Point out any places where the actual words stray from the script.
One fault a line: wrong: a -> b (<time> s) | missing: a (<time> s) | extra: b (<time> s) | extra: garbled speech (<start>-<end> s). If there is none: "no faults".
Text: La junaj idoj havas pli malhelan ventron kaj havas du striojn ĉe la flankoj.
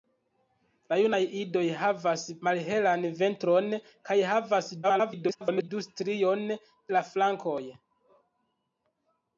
missing: pli (2.2 s)
extra: garbled speech (4.8-5.7 s)
missing: ĉe (6.4 s)